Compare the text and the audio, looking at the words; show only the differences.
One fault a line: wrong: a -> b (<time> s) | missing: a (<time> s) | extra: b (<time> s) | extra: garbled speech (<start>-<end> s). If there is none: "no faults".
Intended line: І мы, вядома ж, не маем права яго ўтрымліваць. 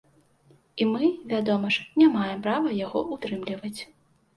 no faults